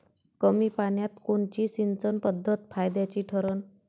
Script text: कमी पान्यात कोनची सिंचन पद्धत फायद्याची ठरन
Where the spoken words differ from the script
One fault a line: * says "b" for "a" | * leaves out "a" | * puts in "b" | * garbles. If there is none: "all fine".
all fine